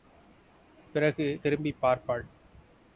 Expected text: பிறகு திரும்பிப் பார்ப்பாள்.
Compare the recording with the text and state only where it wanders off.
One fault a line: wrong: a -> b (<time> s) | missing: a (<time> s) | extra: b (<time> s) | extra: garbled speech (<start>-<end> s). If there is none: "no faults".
no faults